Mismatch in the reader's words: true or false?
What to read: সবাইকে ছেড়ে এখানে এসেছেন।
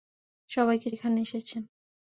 true